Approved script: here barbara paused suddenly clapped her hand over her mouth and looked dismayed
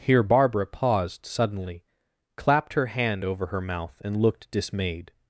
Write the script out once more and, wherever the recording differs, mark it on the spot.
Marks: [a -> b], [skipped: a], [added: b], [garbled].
here barbara paused suddenly clapped her hand over her mouth and looked dismayed